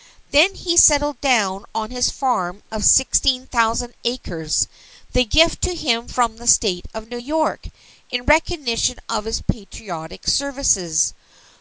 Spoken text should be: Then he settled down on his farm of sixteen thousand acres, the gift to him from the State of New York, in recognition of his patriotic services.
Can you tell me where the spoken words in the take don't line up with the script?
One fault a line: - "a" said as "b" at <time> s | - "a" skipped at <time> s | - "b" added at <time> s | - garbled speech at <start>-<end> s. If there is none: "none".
none